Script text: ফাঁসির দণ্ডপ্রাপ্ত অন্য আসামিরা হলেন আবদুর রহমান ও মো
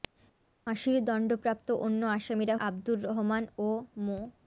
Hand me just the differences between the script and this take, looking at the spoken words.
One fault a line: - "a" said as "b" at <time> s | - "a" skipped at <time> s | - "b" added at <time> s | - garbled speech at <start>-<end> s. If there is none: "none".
- "হলেন" skipped at 2.5 s